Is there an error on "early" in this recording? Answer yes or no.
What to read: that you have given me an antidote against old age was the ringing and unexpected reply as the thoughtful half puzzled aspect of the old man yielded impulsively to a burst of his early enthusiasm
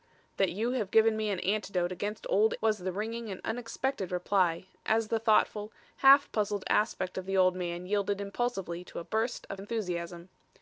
yes